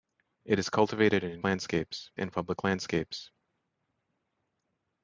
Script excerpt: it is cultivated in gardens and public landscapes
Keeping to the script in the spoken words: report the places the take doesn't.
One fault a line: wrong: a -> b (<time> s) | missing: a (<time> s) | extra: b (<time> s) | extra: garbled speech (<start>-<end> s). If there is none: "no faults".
wrong: gardens -> landscapes (1.4 s)